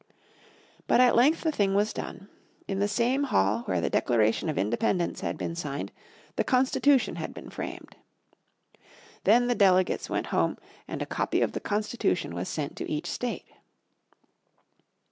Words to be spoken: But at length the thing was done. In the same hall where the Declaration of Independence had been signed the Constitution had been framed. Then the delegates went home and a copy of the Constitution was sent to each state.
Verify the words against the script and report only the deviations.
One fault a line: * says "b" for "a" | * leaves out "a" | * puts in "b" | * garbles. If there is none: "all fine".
all fine